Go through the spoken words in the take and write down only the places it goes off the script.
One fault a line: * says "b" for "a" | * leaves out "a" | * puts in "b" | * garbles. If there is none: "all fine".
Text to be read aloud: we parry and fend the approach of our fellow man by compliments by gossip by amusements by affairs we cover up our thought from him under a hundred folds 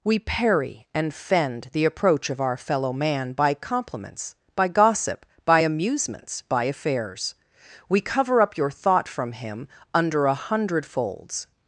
* says "your" for "our"